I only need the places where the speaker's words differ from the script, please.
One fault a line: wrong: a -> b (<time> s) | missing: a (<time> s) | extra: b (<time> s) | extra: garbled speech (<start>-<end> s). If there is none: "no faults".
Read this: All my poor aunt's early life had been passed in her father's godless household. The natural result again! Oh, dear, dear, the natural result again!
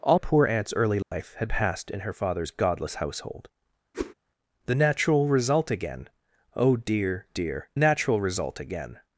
missing: my (0.2 s)
missing: been (1.5 s)
missing: the (7.7 s)